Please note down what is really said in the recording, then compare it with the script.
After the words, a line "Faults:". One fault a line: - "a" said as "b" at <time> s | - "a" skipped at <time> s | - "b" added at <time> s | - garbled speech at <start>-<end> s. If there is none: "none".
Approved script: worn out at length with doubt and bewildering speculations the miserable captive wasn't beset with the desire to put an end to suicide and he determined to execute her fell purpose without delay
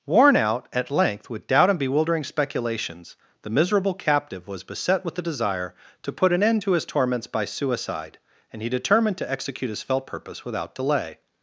worn out at length with doubt and bewildering speculations the miserable captive was beset with the desire to put an end to his torments by suicide and he determined to execute his fell purpose without delay
Faults:
- "wasn't" said as "was" at 4.5 s
- "his torments by" added at 6.7 s
- "her" said as "his" at 9.7 s